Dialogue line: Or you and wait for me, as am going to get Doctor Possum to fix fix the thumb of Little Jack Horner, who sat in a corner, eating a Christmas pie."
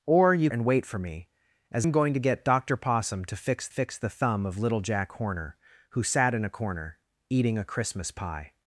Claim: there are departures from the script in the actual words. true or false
false